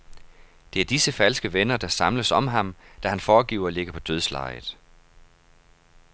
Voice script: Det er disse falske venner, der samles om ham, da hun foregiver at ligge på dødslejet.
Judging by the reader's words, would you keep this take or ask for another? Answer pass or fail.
fail